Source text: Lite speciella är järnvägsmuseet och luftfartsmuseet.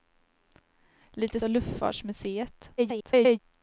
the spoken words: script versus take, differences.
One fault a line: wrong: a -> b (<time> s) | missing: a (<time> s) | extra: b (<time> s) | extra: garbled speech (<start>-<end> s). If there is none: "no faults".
missing: speciella är järnvägsmuseet (1.4 s)
extra: garbled speech (2.8-3.4 s)